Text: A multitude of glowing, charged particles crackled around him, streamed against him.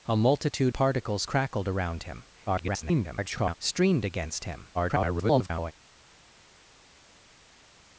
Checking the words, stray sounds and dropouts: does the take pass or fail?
fail